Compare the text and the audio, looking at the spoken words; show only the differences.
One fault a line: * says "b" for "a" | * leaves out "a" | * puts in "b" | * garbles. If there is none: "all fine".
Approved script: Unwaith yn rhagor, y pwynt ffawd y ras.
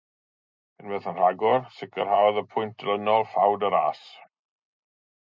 * puts in "sicrhaodd"
* puts in "dilynol"